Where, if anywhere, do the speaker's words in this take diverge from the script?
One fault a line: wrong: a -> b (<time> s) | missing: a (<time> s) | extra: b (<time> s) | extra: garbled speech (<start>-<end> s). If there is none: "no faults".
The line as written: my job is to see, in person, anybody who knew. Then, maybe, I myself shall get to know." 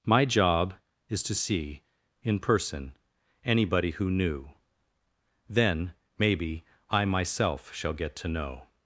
no faults